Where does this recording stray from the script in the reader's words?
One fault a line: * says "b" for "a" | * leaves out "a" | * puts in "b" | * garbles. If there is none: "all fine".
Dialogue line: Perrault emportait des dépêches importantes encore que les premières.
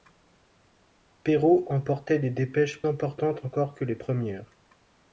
all fine